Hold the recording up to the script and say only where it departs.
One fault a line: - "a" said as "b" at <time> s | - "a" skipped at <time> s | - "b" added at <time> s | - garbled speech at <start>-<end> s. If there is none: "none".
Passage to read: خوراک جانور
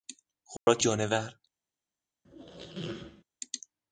none